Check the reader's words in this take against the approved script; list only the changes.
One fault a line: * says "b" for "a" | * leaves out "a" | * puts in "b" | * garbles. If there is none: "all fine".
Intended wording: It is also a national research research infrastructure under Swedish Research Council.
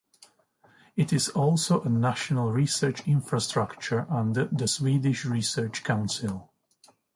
* leaves out "research"
* puts in "the"